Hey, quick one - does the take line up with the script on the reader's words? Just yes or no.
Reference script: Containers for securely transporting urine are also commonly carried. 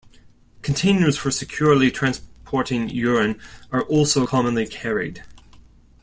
yes